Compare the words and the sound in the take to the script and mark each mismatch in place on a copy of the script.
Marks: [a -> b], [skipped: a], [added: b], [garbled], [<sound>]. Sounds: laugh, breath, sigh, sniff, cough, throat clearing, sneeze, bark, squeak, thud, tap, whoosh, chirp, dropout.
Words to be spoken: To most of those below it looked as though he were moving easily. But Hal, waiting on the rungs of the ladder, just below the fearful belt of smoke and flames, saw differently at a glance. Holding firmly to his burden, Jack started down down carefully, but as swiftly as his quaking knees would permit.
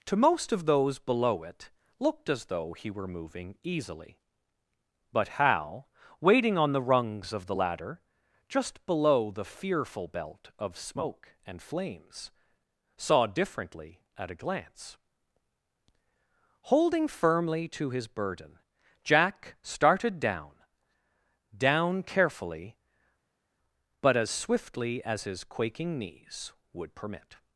To most of those below it looked as though he were moving easily. But Hal, waiting on the rungs of the ladder, just below the fearful belt of smoke and flames, saw differently at a glance. Holding firmly to his burden, Jack started down down carefully, but as swiftly as his quaking knees would permit.